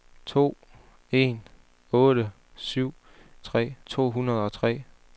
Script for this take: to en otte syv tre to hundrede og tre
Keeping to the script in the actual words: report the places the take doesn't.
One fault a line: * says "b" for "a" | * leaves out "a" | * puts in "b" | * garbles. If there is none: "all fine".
all fine